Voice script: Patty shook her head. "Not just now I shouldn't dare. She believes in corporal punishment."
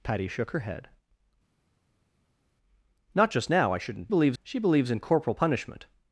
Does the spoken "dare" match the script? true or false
false